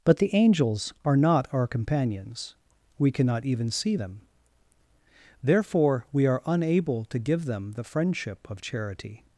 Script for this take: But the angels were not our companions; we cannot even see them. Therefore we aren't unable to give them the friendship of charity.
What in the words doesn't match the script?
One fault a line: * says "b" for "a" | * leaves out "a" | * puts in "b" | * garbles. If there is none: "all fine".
* says "are" for "were"
* says "are" for "aren't"